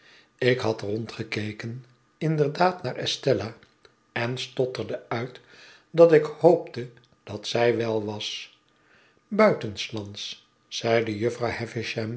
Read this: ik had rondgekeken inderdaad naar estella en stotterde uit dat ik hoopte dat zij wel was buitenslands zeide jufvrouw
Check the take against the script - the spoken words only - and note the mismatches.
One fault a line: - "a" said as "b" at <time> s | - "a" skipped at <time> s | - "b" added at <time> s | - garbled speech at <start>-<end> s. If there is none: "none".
none